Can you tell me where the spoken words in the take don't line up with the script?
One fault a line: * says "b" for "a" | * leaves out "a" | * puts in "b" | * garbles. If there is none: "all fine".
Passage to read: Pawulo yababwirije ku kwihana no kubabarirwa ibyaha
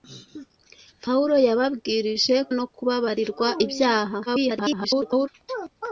* leaves out "ku kwihana"
* garbles